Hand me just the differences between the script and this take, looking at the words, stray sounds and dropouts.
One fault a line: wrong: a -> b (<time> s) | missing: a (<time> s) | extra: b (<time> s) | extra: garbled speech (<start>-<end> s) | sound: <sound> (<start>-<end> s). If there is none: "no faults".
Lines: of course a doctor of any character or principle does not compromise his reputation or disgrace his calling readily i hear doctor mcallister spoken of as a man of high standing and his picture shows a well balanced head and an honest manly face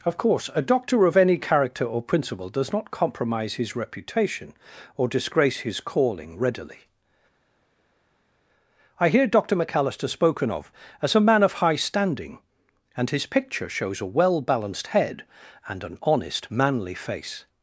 no faults